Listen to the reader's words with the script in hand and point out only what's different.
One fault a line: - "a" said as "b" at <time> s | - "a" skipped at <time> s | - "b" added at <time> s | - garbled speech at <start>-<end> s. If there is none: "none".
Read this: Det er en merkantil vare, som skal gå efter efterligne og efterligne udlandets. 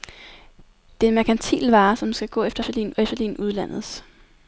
none